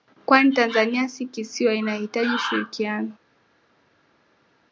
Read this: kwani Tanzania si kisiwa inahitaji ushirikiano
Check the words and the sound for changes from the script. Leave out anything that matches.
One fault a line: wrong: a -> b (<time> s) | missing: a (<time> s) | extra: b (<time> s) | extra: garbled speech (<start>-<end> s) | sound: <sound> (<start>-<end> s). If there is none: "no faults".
no faults